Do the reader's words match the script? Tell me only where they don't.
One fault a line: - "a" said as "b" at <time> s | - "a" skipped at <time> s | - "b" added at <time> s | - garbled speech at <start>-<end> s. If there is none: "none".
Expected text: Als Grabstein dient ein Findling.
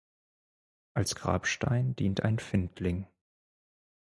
none